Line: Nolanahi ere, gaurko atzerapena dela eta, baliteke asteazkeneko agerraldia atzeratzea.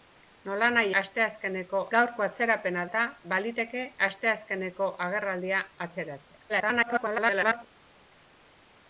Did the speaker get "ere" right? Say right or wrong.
wrong